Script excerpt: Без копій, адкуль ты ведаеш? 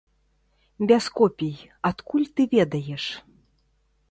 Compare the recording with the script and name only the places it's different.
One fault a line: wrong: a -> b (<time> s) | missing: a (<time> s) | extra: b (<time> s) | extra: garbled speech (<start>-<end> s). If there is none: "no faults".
no faults